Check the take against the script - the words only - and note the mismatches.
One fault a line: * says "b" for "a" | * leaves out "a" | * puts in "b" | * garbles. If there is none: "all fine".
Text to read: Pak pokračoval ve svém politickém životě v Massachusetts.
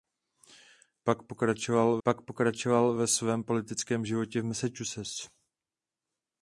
* puts in "pak pokračoval"